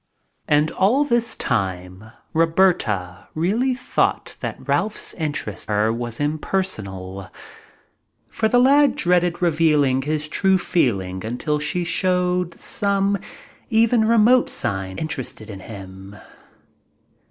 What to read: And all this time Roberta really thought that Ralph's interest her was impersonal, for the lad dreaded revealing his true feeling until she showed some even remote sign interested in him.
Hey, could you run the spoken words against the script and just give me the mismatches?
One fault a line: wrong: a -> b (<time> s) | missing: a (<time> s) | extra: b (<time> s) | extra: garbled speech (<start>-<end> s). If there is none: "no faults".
no faults